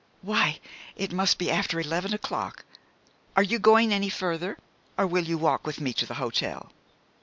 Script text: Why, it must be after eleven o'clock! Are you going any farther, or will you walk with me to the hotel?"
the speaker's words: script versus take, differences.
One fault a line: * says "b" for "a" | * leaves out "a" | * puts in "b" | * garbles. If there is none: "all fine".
all fine